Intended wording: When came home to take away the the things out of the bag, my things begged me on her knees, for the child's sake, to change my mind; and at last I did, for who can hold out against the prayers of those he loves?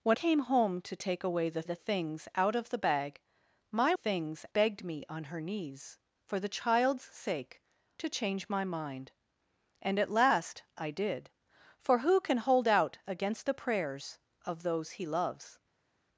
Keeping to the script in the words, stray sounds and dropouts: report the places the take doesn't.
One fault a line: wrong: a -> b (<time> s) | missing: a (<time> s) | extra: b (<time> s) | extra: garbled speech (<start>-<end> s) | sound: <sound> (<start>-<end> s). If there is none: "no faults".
no faults